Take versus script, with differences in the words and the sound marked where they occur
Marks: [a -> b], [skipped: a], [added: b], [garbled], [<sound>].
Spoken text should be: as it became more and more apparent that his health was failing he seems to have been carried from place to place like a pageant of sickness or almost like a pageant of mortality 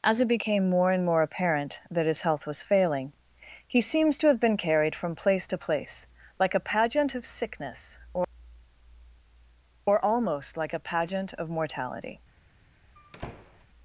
as it became more and more apparent that his health was failing he seems to have been carried from place to place like a pageant of sickness or [added: or] almost like a pageant of mortality [squeak]